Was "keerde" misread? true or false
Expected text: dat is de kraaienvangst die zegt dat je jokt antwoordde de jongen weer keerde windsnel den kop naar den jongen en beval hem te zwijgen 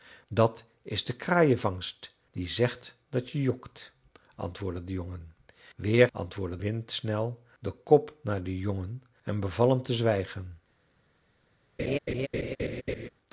true